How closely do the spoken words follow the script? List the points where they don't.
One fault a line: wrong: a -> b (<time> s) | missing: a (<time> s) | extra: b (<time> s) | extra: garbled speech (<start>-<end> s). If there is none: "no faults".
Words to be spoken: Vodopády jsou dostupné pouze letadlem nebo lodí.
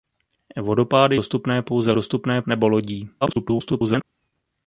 missing: jsou (1.1 s)
wrong: letadlem -> dostupné (1.9 s)
extra: garbled speech (3.2-4.0 s)